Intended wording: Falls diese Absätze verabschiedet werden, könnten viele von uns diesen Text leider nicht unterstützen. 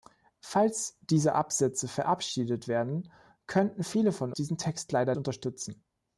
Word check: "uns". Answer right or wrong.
wrong